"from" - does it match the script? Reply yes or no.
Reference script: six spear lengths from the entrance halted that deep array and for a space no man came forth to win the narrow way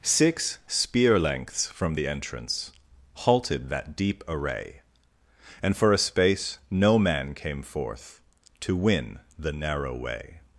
yes